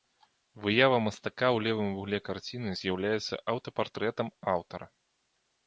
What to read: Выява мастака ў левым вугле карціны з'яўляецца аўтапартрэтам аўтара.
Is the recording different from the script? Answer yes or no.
no